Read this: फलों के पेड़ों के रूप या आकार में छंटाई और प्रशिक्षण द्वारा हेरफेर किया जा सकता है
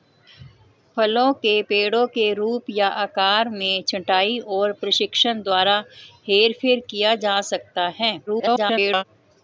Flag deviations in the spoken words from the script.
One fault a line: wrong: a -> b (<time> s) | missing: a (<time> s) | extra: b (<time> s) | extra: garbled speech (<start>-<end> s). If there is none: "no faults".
extra: garbled speech (8.3-9.0 s)